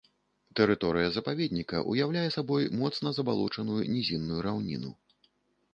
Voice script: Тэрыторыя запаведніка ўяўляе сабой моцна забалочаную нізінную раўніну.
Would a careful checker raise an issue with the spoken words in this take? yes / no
no